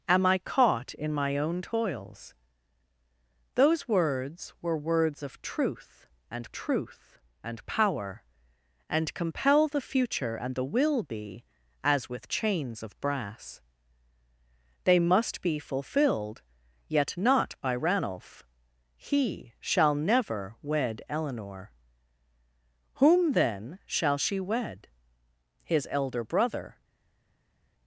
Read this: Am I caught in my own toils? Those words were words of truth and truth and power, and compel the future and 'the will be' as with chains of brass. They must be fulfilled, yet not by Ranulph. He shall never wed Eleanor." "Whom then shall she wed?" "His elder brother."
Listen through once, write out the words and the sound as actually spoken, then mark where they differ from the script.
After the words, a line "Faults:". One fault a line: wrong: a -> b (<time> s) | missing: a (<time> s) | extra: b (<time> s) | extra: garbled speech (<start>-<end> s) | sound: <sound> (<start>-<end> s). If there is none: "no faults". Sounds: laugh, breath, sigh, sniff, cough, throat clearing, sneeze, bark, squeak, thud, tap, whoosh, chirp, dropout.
Am I caught in my own toils? Those words were words of truth and truth and power, and compel the future and 'the will be' as with chains of brass. They must be fulfilled, yet not by Ranulph. He shall never wed Eleanor." "Whom then shall she wed?" "His elder brother."
Faults:
no faults